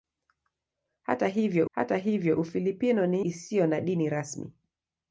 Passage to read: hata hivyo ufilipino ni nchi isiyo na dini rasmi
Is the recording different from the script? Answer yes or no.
yes